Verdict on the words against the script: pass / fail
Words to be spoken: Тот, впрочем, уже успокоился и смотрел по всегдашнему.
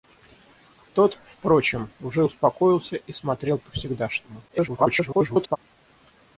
fail